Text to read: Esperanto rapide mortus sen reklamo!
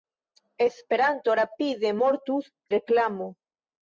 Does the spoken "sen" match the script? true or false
false